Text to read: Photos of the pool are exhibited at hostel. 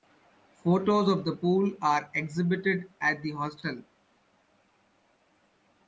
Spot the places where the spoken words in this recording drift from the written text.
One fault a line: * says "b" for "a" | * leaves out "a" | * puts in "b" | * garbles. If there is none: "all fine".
* puts in "the"